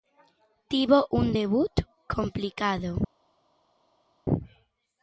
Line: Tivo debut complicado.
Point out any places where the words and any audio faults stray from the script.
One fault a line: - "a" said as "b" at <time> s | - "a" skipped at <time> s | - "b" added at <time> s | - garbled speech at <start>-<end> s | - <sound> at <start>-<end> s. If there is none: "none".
- "un" added at 1.1 s